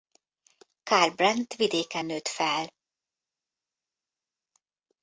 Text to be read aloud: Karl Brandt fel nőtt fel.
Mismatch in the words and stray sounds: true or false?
true